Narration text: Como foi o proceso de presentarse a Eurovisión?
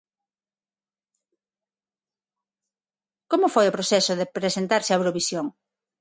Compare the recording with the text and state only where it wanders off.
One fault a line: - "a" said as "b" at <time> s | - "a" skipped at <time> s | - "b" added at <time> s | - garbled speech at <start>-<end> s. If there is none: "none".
none